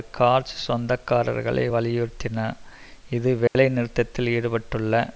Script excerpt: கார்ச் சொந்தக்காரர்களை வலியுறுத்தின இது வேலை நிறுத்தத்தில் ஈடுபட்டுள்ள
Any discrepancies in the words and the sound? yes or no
yes